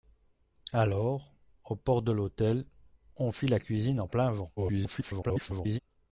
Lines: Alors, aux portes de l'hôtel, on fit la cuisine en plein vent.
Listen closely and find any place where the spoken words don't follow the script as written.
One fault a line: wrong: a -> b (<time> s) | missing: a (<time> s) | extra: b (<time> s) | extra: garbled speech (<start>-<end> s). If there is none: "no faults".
extra: garbled speech (4.6-5.8 s)